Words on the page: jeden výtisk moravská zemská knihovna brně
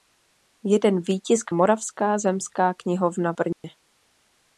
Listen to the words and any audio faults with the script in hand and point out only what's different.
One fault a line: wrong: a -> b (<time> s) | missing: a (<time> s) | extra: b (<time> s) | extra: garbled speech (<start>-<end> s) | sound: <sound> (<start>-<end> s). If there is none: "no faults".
sound: dropout (3.5-3.6 s)